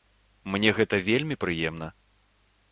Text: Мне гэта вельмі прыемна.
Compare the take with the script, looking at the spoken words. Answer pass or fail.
pass